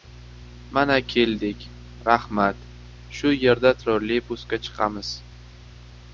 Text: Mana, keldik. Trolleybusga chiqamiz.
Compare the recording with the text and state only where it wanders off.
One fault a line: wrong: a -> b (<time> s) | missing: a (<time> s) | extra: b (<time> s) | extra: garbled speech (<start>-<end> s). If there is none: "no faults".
extra: Rahmat Shu yerda (2.1 s)